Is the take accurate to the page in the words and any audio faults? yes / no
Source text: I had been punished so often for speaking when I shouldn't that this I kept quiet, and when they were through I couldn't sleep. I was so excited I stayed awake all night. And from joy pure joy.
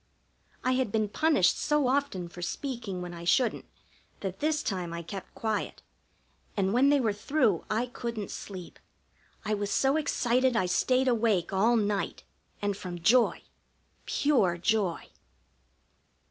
no